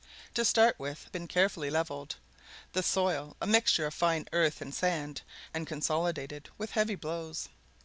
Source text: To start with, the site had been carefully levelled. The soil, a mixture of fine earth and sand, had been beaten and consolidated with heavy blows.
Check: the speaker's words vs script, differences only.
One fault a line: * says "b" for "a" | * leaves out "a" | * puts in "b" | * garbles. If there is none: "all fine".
* leaves out "the site had"
* leaves out "had been beaten"